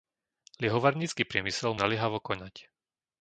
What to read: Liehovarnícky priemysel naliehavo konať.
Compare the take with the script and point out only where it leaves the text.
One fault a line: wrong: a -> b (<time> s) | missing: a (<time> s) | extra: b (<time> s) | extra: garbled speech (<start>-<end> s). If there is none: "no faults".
no faults